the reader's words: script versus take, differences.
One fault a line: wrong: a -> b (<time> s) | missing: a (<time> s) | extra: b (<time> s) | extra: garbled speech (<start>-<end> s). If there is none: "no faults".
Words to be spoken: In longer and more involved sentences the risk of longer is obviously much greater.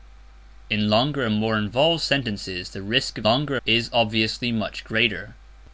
no faults